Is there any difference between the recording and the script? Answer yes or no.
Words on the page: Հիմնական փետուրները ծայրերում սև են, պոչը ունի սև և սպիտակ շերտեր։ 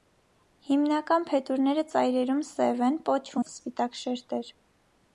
yes